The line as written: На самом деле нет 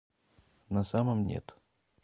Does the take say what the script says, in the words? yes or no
no